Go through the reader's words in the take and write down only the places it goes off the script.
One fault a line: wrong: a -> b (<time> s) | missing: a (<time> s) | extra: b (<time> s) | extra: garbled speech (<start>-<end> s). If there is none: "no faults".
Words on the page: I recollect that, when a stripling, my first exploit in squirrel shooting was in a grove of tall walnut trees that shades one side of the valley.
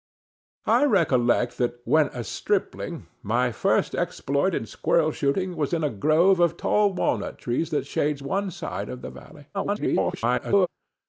extra: garbled speech (9.5-10.7 s)